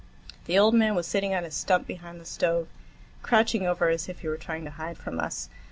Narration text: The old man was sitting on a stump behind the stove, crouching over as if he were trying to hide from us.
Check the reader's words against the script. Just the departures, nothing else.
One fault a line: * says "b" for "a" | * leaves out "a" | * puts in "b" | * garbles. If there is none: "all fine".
all fine